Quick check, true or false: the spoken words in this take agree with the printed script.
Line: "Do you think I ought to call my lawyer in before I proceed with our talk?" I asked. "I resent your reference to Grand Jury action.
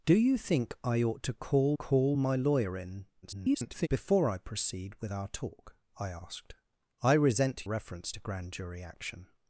false